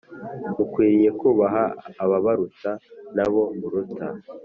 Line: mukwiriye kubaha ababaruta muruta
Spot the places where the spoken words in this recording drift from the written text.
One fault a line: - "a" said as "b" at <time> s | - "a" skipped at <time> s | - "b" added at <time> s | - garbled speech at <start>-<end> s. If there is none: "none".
- "nabo" added at 3.1 s